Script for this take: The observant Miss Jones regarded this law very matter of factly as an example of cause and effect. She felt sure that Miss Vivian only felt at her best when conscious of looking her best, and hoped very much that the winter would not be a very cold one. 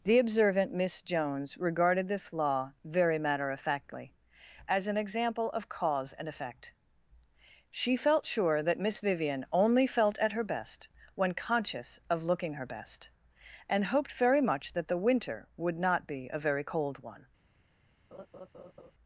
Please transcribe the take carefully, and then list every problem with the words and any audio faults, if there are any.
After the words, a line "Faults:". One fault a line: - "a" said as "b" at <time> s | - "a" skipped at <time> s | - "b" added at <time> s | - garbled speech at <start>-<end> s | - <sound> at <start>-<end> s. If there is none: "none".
The observant Miss Jones regarded this law very matter of factly as an example of cause and effect. She felt sure that Miss Vivian only felt at her best when conscious of looking her best, and hoped very much that the winter would not be a very cold one.
Faults:
- laugh at 18.1-18.9 s